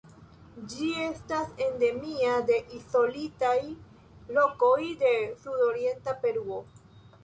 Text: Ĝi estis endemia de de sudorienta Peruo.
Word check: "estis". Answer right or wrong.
wrong